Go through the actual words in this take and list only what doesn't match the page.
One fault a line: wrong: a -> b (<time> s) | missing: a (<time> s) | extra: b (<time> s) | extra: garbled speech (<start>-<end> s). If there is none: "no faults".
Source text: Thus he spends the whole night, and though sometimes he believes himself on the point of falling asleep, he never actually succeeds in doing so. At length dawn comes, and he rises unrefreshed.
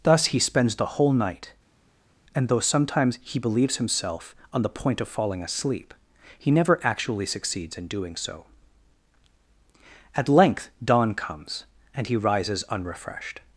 no faults